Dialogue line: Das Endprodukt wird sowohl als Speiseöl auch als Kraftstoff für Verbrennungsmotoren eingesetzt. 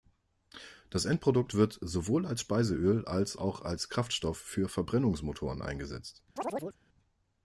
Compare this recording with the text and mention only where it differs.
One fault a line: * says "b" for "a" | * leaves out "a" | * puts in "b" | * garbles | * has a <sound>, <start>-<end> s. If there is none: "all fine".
* puts in "als"
* has a chirp, 6.4-6.8 s